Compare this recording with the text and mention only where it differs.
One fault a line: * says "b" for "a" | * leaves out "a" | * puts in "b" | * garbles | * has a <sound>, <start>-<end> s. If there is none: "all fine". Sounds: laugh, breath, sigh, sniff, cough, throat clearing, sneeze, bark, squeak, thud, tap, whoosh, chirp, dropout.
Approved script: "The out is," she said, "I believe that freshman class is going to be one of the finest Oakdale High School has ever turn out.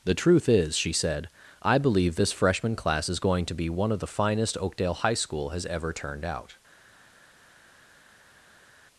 * says "truth" for "out"
* says "this" for "that"
* says "turned" for "turn"